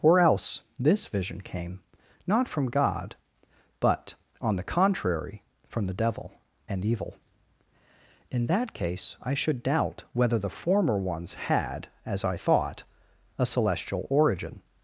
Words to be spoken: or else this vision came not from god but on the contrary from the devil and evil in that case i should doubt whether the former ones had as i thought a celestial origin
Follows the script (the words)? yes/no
yes